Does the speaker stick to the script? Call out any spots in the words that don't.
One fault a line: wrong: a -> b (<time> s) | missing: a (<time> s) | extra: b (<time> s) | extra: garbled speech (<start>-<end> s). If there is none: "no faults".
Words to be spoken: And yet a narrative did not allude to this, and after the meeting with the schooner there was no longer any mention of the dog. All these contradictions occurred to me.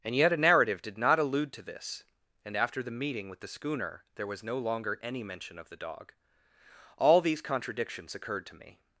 no faults